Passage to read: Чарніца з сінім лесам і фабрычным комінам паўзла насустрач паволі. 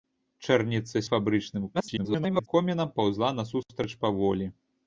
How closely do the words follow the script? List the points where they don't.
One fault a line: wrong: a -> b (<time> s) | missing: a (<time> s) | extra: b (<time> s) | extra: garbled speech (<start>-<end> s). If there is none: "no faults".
missing: сінім лесам (1.0 s)
extra: garbled speech (1.7-2.5 s)